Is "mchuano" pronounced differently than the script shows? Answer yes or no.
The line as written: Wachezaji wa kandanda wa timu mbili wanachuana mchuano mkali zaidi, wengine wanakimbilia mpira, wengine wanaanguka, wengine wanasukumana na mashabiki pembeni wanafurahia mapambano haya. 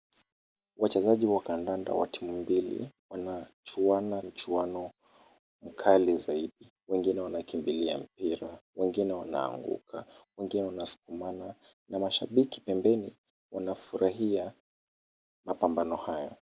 no